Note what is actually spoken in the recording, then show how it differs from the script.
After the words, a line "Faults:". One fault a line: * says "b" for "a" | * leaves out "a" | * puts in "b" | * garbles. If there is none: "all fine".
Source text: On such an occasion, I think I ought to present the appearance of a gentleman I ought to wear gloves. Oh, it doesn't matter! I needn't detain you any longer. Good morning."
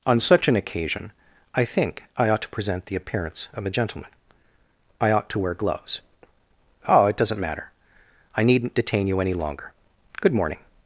On such an occasion, I think I ought to present the appearance of a gentleman I ought to wear gloves. Oh, it doesn't matter! I needn't detain you any longer. Good morning."
Faults:
all fine